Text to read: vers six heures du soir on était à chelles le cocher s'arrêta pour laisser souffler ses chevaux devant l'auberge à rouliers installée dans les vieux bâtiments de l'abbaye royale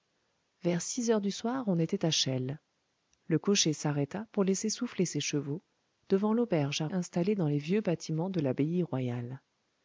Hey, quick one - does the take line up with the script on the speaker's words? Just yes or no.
no